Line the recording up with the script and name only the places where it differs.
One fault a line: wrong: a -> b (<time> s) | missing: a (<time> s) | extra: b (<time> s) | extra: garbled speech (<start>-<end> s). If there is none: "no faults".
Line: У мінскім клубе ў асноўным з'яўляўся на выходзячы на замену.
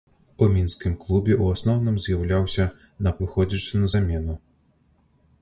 no faults